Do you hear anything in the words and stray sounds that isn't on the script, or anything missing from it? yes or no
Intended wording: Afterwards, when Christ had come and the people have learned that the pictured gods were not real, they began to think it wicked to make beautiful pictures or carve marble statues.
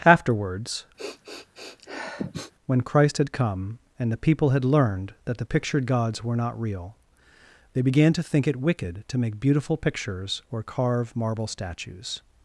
yes